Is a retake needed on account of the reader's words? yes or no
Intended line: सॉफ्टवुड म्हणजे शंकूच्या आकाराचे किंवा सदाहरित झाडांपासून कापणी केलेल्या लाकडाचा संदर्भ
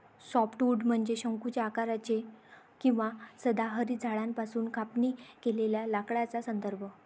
no